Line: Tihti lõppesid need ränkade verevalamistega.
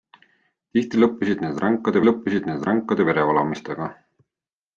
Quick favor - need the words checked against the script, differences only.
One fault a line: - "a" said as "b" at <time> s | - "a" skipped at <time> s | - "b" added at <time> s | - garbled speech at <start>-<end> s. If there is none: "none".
- "lõppesid need ränkade" added at 2.1 s